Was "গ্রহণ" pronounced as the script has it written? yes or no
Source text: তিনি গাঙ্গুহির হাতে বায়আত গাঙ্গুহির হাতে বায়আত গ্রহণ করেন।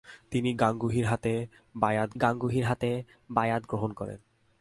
yes